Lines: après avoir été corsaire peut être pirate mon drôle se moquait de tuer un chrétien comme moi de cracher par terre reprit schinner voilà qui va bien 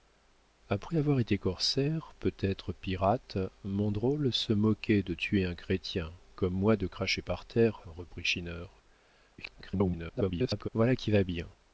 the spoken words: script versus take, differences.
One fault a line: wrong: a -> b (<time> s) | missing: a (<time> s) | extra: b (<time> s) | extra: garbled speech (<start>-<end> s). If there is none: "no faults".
extra: garbled speech (9.4-10.7 s)